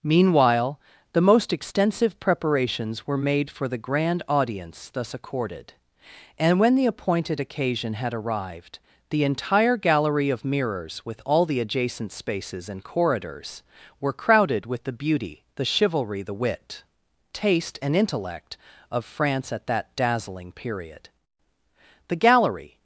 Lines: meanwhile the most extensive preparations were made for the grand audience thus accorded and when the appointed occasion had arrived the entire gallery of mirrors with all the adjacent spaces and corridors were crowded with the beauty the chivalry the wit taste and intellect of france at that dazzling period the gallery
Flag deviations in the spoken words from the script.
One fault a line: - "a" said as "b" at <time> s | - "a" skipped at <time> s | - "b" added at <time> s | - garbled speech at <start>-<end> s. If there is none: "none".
none